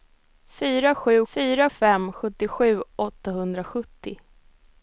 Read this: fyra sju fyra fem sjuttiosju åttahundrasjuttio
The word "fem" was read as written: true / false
true